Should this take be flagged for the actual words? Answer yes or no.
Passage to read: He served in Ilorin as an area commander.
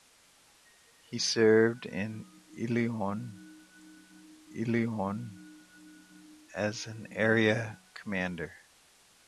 yes